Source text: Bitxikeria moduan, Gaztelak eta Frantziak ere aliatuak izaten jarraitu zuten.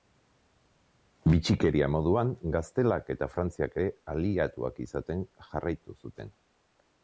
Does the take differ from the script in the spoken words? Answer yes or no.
no